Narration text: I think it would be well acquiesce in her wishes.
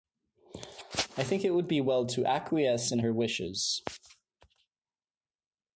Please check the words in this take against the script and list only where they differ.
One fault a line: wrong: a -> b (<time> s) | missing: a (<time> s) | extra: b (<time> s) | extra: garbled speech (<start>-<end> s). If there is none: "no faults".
extra: to (2.1 s)